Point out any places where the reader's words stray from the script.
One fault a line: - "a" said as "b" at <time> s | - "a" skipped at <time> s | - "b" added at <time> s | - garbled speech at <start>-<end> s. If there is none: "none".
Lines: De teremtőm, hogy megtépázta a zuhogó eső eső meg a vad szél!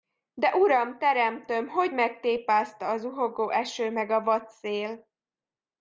- "uram" added at 0.6 s
- "eső" skipped at 3.9 s